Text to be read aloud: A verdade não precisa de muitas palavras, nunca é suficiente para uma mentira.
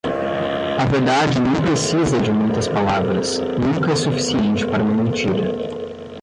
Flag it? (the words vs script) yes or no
no